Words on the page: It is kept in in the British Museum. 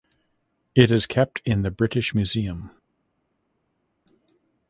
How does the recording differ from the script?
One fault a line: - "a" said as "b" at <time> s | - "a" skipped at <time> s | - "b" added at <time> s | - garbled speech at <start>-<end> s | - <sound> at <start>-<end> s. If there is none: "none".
- "in" skipped at 1.6 s